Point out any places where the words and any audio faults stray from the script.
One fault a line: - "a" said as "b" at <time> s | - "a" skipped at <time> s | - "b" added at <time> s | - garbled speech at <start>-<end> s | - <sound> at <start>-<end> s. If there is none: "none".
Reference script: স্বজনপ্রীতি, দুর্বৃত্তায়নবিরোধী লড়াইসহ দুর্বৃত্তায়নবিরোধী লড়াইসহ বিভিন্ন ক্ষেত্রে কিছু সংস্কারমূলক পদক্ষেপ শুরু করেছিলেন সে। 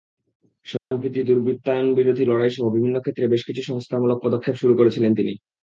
- dropout at 0.8-0.9 s
- "দুর্বৃত্তায়নবিরোধী লড়াইসহ" skipped at 2.6 s
- "বেশ" added at 3.3 s
- "সে" said as "তিনি" at 5.1 s